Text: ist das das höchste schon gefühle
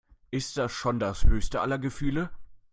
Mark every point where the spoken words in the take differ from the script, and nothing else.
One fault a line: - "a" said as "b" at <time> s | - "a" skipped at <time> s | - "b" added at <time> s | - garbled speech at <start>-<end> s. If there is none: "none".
- "schon" added at 0.7 s
- "schon" said as "aller" at 1.6 s